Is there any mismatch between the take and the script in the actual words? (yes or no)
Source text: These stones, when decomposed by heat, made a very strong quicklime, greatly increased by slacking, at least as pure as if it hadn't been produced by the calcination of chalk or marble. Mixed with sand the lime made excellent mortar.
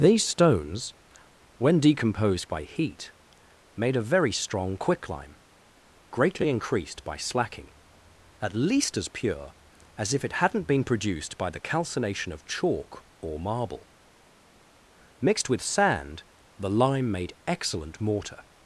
no